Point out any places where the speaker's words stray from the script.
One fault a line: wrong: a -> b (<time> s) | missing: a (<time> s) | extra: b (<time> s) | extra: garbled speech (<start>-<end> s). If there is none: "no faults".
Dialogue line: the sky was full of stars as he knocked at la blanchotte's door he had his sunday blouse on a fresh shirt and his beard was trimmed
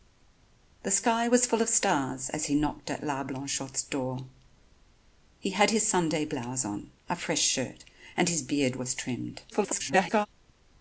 extra: garbled speech (9.5-10.3 s)